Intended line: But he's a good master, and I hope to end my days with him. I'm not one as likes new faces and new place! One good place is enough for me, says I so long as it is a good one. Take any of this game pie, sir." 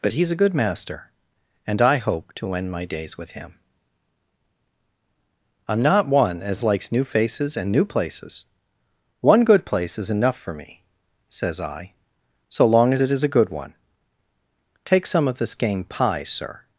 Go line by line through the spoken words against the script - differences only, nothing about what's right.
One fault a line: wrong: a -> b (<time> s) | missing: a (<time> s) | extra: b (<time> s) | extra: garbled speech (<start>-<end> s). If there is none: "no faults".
wrong: place -> places (7.8 s)
wrong: any -> some (15.1 s)